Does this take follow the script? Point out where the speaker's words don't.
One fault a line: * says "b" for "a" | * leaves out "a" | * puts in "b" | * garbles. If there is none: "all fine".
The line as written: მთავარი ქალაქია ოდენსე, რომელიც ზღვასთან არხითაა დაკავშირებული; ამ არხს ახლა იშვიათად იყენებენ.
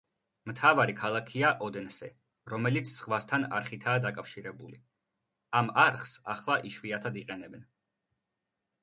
all fine